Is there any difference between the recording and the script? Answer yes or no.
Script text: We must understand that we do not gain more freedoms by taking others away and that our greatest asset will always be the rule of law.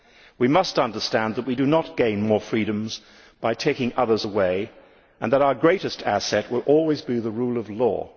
no